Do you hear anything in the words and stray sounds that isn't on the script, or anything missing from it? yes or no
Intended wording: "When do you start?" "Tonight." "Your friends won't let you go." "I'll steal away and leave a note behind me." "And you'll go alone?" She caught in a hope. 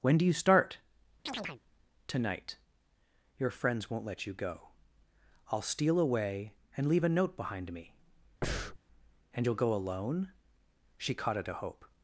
yes